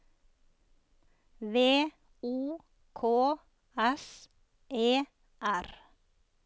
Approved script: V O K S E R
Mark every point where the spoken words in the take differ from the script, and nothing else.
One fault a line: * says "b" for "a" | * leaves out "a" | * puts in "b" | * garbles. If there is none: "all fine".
all fine